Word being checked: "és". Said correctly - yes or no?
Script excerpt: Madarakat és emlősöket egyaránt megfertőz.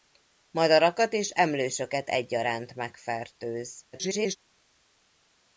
yes